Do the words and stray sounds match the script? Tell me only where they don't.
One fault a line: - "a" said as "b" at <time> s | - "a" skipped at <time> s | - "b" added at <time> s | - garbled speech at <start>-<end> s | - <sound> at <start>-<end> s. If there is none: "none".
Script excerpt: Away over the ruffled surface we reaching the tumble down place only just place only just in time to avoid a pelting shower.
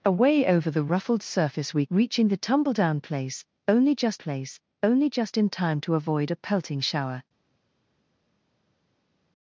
none